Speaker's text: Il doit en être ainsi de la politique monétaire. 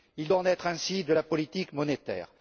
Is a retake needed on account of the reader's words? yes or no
no